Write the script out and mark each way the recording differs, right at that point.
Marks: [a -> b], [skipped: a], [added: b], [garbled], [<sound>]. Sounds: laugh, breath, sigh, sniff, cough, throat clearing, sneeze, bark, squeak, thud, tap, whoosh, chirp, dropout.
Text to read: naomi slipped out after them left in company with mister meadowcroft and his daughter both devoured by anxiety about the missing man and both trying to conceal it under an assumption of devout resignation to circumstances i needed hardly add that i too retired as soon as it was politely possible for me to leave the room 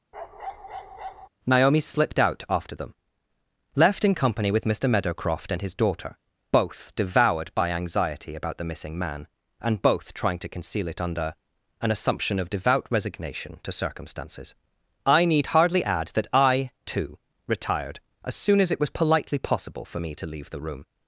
[bark] naomi slipped out after them left in company with mister meadowcroft and his daughter both devoured by anxiety about the missing man and both trying to conceal it under an assumption of devout resignation to circumstances i [needed -> need] hardly add that i too retired as soon as it was politely possible for me to leave the room